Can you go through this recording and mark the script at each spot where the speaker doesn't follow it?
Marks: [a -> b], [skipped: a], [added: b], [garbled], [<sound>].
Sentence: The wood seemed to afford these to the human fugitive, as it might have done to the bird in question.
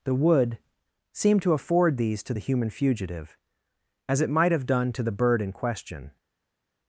The wood seemed to afford these to the human fugitive, as it might have done to the bird in question.